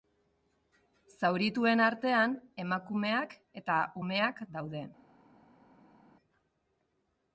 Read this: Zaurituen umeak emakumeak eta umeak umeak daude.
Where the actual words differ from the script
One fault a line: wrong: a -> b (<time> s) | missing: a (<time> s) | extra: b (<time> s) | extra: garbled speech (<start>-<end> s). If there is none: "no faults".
wrong: umeak -> artean (1.9 s)
missing: umeak (4.4 s)